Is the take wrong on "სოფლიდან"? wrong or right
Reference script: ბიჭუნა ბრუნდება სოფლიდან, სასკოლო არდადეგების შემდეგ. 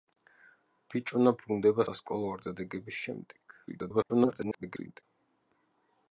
wrong